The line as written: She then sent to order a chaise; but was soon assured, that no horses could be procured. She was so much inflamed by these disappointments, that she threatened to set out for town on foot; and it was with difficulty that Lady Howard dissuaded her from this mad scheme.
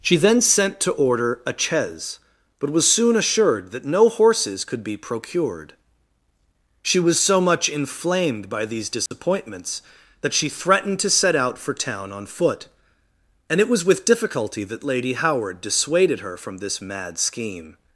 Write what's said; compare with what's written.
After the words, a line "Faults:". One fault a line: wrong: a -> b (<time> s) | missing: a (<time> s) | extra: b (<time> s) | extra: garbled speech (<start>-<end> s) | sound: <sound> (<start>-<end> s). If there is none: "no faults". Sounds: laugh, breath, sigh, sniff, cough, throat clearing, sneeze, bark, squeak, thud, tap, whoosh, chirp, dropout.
She then sent to order a chaise; but was soon assured, that no horses could be procured. She was so much inflamed by these disappointments, that she threatened to set out for town on foot; and it was with difficulty that Lady Howard dissuaded her from this mad scheme.
Faults:
sound: dropout (9.1-9.1 s)